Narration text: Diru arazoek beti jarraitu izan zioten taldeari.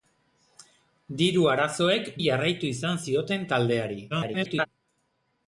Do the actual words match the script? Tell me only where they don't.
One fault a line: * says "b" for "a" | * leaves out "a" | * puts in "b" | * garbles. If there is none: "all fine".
* leaves out "beti"
* garbles